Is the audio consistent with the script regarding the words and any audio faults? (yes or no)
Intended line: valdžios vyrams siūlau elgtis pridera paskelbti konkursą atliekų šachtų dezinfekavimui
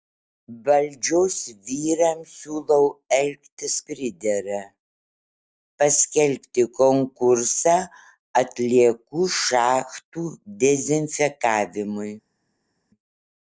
yes